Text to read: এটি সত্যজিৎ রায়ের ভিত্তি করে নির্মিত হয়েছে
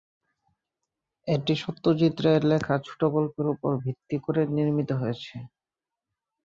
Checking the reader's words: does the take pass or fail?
fail